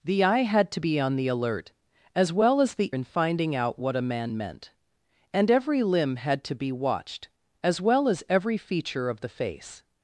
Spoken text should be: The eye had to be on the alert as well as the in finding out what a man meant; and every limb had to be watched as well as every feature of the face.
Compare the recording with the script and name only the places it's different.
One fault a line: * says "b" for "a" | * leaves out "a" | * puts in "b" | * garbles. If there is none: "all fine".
all fine